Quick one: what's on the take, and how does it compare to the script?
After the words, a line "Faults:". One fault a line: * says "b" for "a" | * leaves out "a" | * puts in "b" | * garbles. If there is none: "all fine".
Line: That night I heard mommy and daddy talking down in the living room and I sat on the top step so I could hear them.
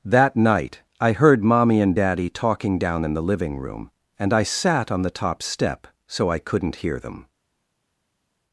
That night I heard mommy and daddy talking down in the living room and I sat on the top step so I couldn't hear them.
Faults:
* says "couldn't" for "could"